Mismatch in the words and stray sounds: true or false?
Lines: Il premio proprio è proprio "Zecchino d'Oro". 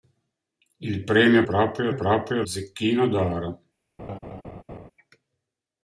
true